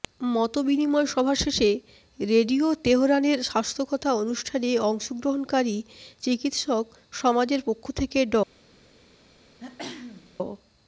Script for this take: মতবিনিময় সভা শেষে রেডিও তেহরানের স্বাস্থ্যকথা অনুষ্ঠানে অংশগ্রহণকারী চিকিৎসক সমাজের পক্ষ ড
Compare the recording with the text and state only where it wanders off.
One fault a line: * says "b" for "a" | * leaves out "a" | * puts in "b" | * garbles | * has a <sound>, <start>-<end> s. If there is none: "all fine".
* puts in "থেকে"
* has a throat clearing, 9.6-10.4 s